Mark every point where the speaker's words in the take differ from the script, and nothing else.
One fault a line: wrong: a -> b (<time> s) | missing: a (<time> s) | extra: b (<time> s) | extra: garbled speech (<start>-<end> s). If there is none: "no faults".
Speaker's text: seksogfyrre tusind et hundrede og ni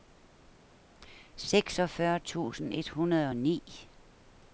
no faults